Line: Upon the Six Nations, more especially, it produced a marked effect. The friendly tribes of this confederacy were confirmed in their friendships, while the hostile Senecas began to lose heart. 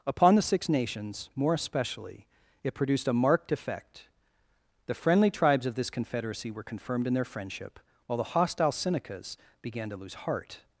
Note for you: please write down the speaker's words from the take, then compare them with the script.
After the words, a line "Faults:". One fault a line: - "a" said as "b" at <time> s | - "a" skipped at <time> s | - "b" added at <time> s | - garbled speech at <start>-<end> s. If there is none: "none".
Upon the Six Nations, more especially, it produced a marked effect. The friendly tribes of this confederacy were confirmed in their friendship, while the hostile Senecas began to lose heart.
Faults:
- "friendships" said as "friendship" at 7.2 s